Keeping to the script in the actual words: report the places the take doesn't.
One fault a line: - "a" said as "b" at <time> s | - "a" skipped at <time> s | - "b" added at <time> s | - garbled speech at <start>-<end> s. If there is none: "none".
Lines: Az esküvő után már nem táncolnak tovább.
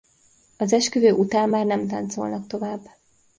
none